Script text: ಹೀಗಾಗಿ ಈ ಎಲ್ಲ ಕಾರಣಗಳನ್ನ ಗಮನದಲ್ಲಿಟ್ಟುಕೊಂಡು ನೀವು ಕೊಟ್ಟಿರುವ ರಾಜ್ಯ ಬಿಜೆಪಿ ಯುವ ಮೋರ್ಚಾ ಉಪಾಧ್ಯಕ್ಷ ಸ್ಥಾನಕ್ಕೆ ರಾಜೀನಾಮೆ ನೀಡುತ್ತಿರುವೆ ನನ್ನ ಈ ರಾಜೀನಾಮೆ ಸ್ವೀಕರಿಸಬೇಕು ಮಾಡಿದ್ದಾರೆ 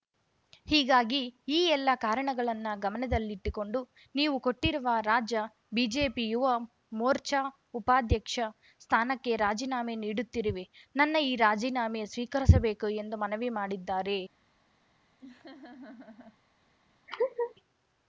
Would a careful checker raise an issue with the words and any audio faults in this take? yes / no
yes